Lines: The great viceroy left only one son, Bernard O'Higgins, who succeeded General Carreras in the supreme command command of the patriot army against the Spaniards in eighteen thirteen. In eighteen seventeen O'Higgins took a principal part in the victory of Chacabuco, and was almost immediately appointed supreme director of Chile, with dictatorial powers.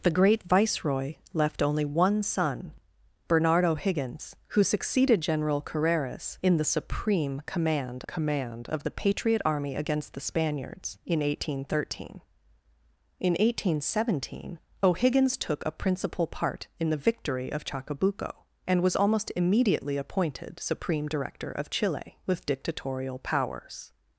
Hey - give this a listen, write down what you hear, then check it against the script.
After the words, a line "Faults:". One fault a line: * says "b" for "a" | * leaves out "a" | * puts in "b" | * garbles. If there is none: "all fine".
The great viceroy left only one son, Bernard O'Higgins, who succeeded General Carreras in the supreme command command of the patriot army against the Spaniards in eighteen thirteen. In eighteen seventeen O'Higgins took a principal part in the victory of Chacabuco, and was almost immediately appointed supreme director of Chile, with dictatorial powers.
Faults:
all fine